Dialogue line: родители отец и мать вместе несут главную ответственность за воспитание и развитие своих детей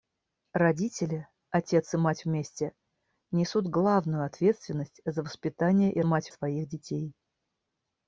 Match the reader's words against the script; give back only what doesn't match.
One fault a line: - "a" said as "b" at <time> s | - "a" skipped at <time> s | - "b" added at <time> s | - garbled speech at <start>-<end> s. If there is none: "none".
- "развитие" said as "мать" at 6.0 s